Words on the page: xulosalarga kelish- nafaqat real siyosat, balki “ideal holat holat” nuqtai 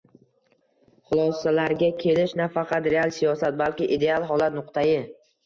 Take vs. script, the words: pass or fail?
fail